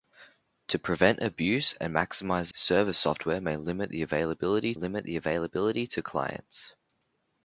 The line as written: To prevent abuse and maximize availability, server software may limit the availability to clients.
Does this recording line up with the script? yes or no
no